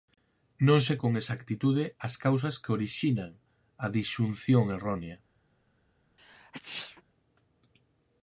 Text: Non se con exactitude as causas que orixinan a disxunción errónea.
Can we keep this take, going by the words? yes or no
yes